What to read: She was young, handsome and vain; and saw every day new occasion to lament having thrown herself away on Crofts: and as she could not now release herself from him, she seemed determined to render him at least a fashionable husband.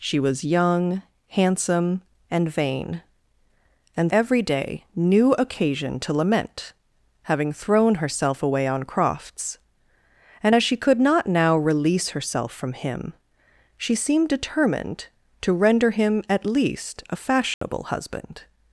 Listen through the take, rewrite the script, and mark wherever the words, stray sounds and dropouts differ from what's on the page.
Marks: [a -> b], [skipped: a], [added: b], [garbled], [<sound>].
She was young, handsome and vain; and [skipped: saw] every day new occasion to lament having thrown herself away on Crofts: and as she could not now release herself from him, she seemed determined to render him at least a fashionable [dropout] husband.